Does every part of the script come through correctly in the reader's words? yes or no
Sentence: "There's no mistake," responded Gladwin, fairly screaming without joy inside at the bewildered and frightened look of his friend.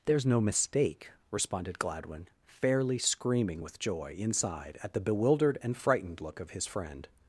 no